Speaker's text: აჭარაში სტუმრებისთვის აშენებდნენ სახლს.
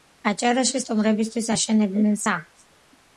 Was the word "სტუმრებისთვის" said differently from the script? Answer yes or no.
no